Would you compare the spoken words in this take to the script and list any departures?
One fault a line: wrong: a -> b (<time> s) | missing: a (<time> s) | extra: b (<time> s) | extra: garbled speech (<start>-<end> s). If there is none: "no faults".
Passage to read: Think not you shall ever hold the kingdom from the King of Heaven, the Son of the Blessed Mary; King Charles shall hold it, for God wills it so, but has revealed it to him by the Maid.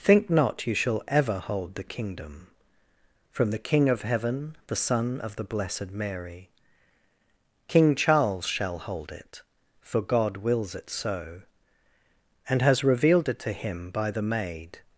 wrong: but -> and (12.5 s)